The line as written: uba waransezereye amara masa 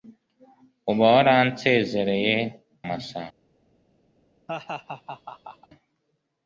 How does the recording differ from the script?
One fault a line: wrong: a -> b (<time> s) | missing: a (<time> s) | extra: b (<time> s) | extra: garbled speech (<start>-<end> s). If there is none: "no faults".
missing: amara (2.4 s)